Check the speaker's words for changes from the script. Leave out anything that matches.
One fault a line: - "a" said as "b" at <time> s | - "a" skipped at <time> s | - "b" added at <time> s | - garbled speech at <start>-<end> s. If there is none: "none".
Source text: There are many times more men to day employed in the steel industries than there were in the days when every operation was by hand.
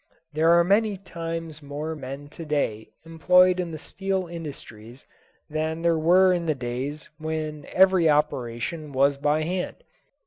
none